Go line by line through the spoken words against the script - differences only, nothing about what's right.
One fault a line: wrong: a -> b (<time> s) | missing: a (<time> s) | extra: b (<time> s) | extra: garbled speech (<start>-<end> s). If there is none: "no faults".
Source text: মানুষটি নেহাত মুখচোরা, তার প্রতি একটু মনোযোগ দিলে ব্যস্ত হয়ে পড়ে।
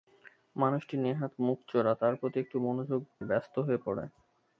missing: দিলে (3.0 s)